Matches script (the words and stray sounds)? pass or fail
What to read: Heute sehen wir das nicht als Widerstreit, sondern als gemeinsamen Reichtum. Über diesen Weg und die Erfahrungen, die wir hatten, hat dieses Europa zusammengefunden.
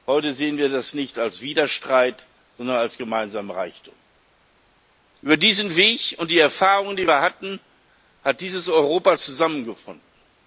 pass